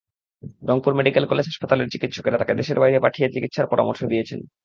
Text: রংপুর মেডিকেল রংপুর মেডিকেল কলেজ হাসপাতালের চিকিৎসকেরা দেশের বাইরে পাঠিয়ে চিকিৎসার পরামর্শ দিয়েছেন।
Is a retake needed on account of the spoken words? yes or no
yes